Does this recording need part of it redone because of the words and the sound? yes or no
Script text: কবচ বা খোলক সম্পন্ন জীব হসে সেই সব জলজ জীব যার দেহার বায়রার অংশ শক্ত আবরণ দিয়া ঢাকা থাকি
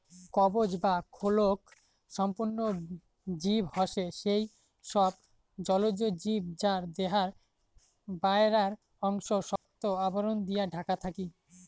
yes